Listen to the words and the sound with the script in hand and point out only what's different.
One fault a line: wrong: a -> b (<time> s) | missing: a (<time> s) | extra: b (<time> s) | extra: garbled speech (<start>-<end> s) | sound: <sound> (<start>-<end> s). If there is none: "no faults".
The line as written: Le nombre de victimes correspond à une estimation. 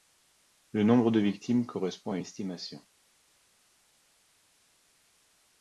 missing: une (2.2 s)